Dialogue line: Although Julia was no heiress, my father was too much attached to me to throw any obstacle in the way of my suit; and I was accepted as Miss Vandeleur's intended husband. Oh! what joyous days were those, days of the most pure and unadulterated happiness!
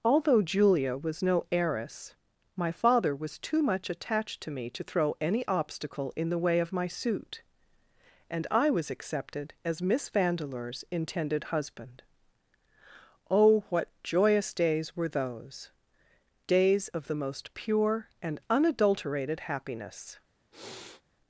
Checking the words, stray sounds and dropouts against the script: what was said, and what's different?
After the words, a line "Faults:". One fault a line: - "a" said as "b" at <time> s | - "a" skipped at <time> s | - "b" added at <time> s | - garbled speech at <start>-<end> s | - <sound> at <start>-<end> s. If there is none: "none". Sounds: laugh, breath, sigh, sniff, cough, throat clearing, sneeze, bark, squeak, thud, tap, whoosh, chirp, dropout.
Although Julia was no heiress, my father was too much attached to me to throw any obstacle in the way of my suit; and I was accepted as Miss Vandeleur's intended husband. Oh! what joyous days were those, days of the most pure and unadulterated happiness!
Faults:
- sniff at 20.5-21.0 s